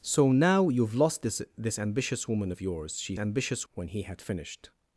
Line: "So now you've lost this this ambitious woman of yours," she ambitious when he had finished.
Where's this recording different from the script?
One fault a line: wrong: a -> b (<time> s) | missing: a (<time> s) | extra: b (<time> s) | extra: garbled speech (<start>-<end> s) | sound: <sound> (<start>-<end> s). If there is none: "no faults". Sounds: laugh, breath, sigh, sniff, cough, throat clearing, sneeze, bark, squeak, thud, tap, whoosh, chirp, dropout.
no faults